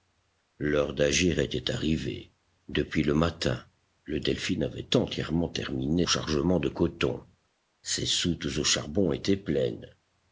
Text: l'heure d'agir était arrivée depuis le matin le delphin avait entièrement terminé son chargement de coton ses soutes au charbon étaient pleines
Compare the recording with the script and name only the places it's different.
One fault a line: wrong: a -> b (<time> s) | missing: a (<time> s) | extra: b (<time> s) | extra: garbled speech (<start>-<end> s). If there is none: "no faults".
missing: son (6.1 s)